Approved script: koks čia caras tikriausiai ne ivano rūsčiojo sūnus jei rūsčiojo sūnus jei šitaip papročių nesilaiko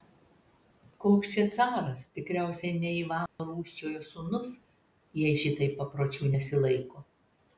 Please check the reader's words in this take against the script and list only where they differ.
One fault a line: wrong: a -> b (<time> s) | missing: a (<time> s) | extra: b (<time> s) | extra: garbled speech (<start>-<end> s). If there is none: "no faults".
missing: rūsčiojo sūnus jei (5.4 s)